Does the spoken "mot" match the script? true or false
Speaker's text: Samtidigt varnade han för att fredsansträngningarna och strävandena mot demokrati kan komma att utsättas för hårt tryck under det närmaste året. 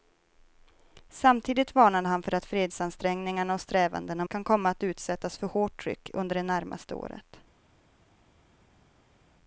false